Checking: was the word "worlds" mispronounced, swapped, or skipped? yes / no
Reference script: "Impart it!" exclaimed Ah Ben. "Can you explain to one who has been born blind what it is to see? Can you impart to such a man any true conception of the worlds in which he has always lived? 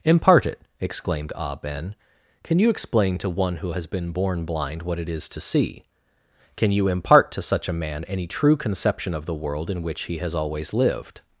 yes